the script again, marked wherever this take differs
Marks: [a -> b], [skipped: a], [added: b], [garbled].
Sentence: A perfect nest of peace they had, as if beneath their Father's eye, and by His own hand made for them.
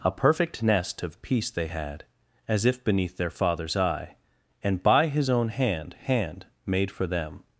A perfect nest of peace they had, as if beneath their Father's eye, and by His own hand [added: hand] made for them.